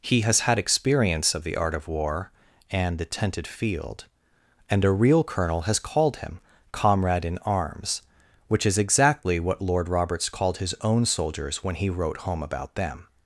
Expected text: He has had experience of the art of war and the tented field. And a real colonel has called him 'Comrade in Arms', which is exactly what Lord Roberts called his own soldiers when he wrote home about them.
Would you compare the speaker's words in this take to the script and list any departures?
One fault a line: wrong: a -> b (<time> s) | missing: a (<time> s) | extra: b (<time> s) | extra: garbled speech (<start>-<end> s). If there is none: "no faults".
no faults